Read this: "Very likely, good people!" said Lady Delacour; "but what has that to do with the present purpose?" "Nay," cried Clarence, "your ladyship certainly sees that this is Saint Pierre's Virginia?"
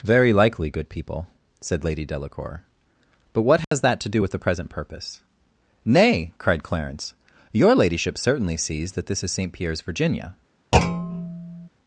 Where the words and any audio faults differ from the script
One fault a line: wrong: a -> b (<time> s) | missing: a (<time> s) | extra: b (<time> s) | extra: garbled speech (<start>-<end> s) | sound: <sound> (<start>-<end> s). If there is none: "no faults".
sound: dropout (3.6-3.7 s)
sound: thud (10.7-11.7 s)